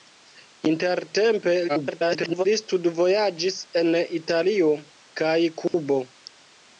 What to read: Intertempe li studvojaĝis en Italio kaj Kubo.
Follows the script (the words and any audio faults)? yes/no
no